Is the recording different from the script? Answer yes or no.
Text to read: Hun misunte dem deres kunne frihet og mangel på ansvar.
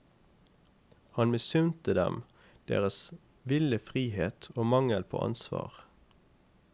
yes